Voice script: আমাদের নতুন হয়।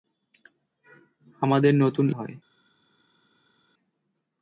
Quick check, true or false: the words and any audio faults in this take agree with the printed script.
true